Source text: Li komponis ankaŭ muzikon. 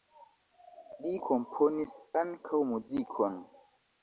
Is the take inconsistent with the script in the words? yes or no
no